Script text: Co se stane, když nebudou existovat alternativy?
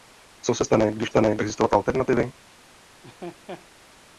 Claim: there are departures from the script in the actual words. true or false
true